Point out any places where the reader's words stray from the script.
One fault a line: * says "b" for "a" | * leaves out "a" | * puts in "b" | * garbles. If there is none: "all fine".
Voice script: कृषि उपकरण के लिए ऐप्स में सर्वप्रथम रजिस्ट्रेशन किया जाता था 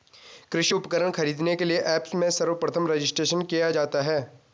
* puts in "खरीदने"
* says "है" for "था"